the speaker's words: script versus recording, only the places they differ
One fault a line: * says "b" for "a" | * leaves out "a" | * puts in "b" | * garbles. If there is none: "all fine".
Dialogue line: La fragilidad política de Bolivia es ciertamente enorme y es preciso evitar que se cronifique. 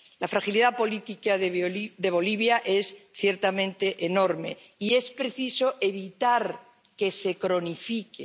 all fine